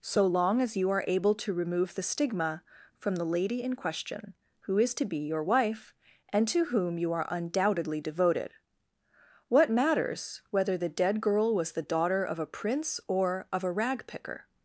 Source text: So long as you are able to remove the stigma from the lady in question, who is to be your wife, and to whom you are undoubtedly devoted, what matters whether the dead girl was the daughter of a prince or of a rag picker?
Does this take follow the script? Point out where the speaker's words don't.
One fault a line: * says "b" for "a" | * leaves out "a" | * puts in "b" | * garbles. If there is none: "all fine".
all fine